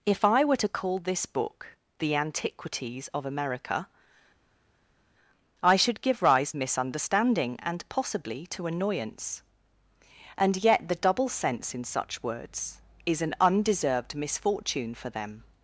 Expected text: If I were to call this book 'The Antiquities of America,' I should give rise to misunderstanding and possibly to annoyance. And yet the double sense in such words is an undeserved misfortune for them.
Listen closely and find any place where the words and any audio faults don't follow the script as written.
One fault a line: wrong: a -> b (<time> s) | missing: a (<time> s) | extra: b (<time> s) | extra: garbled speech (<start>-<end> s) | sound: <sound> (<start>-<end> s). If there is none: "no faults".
missing: to (6.5 s)